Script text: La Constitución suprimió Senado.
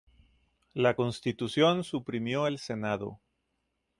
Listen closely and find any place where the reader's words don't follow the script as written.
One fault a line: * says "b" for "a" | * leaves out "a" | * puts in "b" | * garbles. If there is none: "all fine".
* puts in "el"